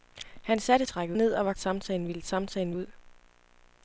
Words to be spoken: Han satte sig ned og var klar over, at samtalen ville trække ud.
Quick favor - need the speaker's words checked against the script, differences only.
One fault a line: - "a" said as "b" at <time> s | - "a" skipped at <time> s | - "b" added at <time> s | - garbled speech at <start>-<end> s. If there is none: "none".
- "sig" said as "trække" at 0.8 s
- "klar over at" skipped at 1.5 s
- "trække" said as "samtalen" at 2.2 s